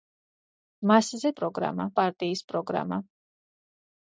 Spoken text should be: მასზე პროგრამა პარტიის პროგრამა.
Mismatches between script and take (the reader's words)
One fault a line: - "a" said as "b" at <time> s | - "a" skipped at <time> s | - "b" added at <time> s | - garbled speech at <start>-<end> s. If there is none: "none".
none